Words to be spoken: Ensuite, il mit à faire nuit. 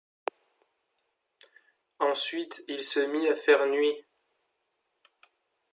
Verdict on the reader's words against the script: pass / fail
fail